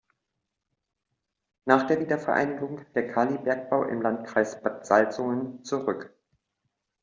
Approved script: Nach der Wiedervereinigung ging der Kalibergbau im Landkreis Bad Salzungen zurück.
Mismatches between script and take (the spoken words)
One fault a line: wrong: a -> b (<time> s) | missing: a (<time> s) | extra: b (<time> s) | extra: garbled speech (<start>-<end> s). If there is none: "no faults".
missing: ging (2.9 s)